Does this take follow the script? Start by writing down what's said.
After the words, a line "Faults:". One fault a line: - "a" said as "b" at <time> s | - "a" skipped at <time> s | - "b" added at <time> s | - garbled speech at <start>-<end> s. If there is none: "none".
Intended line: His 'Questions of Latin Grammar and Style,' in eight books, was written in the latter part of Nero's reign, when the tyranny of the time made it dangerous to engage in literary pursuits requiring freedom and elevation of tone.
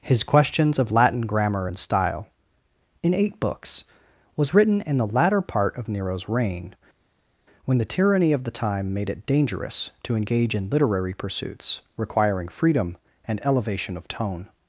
His 'Questions of Latin Grammar and Style,' in eight books, was written in the latter part of Nero's reign, when the tyranny of the time made it dangerous to engage in literary pursuits requiring freedom and elevation of tone.
Faults:
none